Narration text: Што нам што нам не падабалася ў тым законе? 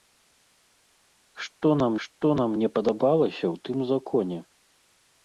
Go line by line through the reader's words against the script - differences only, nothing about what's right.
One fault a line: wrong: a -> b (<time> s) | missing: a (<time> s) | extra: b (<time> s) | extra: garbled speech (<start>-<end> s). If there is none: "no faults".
no faults